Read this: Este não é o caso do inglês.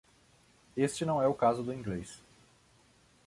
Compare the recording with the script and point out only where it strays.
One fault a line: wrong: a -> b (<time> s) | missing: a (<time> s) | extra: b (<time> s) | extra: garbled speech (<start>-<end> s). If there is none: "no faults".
no faults